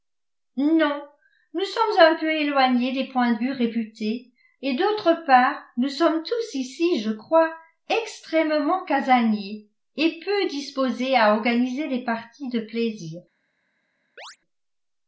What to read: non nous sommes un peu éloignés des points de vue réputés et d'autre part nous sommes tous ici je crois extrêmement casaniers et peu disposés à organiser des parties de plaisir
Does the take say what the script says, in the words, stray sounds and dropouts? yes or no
no